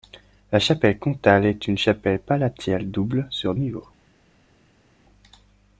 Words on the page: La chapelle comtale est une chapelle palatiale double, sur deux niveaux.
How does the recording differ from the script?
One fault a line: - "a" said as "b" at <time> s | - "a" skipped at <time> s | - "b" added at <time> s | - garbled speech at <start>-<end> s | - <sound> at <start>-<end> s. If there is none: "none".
- "deux" skipped at 3.5 s